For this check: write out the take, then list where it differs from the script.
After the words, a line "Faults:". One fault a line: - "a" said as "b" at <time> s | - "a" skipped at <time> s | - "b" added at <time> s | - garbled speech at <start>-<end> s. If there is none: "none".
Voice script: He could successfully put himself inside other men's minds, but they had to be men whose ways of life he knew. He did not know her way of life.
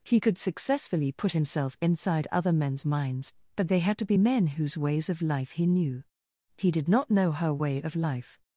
He could successfully put himself inside other men's minds, but they had to be men whose ways of life he knew. He did not know her way of life.
Faults:
none